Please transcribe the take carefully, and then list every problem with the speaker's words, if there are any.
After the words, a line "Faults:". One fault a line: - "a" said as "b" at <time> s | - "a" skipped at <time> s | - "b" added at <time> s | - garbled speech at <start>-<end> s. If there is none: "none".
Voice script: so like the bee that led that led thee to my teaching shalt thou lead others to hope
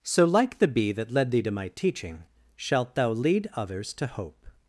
so like the bee that led thee to my teaching shalt thou lead others to hope
Faults:
- "that led" skipped at 1.3 s